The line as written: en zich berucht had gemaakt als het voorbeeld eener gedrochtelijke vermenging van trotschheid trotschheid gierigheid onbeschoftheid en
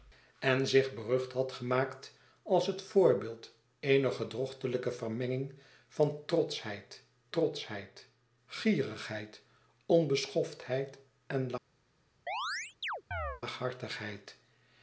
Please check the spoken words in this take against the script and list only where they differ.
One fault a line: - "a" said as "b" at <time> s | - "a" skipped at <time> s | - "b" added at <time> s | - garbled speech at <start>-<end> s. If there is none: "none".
none